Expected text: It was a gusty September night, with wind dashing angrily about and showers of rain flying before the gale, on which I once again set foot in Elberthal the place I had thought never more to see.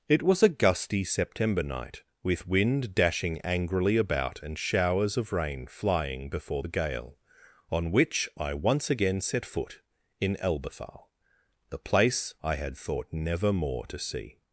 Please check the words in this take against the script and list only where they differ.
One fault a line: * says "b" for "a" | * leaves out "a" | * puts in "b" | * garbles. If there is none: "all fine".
all fine